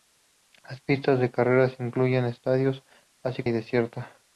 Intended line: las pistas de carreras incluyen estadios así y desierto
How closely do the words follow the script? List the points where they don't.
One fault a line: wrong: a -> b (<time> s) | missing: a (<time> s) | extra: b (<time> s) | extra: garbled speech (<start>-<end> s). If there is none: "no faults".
no faults